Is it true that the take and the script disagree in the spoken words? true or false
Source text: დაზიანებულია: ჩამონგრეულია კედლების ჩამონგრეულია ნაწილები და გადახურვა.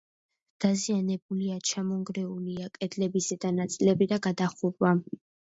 true